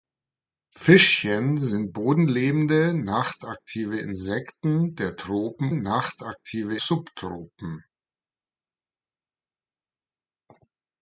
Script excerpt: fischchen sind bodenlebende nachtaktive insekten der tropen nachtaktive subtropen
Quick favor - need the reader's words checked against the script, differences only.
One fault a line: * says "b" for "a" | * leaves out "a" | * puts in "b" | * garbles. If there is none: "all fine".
all fine